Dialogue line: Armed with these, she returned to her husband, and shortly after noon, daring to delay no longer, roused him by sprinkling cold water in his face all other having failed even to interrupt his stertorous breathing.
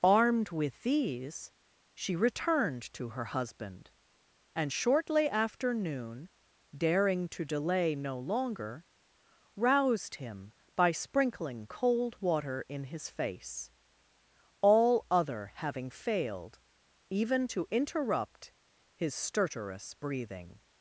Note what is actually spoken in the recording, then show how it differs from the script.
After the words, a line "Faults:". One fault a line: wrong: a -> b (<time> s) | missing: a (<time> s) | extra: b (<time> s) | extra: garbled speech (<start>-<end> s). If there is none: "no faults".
Armed with these, she returned to her husband, and shortly after noon, daring to delay no longer, roused him by sprinkling cold water in his face all other having failed even to interrupt his stertorous breathing.
Faults:
no faults